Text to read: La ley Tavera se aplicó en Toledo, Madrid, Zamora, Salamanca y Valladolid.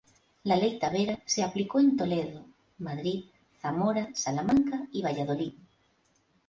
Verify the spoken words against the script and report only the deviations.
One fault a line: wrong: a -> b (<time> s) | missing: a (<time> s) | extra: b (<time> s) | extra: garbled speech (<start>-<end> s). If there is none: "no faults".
no faults